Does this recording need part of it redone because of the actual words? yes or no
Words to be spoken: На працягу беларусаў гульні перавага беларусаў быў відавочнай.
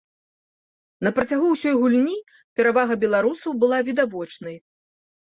yes